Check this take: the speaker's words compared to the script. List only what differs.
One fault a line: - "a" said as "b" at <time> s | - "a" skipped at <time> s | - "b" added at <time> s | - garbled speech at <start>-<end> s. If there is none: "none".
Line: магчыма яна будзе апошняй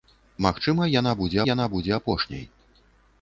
- "яна будзе" added at 1.5 s